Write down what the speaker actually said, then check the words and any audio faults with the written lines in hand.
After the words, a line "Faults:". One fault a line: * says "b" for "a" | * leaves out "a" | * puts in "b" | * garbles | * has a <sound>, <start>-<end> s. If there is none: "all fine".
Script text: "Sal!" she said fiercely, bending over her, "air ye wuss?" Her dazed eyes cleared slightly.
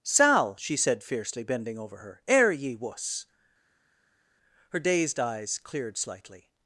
"Sal!" she said fiercely, bending over her, "air ye wuss?" Her dazed eyes cleared slightly.
Faults:
all fine